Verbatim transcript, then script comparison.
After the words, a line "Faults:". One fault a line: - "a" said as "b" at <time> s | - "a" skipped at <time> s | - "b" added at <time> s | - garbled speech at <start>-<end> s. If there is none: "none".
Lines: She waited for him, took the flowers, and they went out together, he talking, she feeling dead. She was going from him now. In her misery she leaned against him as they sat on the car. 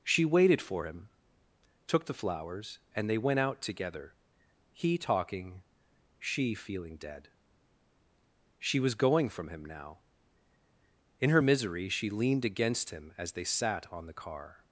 She waited for him, took the flowers, and they went out together, he talking, she feeling dead. She was going from him now. In her misery she leaned against him as they sat on the car.
Faults:
none